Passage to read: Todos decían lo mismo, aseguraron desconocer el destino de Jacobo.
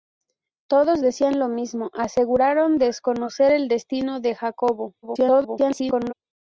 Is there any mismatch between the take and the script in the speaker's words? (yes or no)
yes